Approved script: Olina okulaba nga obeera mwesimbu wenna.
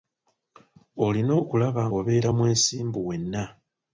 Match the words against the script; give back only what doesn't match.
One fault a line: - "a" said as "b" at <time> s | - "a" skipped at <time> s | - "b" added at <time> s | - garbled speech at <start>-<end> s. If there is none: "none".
- "nga" skipped at 1.8 s